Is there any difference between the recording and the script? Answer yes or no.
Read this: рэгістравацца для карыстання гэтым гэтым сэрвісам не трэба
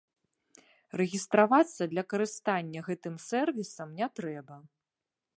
yes